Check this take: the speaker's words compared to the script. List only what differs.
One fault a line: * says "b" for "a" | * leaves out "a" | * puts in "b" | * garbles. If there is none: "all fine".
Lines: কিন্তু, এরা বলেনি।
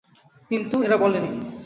all fine